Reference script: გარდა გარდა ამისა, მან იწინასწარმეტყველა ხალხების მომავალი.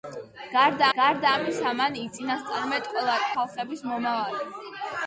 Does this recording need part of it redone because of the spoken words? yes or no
no